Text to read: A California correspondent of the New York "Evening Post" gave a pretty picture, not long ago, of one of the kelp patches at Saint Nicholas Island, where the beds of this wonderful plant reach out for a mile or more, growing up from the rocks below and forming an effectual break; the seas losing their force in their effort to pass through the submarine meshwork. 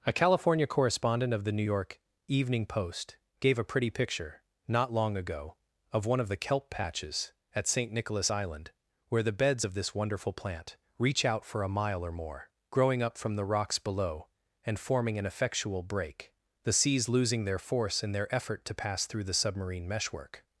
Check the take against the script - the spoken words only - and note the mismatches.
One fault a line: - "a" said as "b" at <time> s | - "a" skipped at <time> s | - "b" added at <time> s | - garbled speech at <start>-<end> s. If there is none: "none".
none